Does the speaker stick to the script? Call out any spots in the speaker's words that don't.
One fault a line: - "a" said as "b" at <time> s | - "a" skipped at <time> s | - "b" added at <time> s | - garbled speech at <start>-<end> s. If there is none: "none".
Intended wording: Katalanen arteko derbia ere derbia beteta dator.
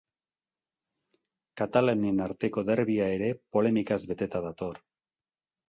- "derbia" said as "polemikaz" at 3.6 s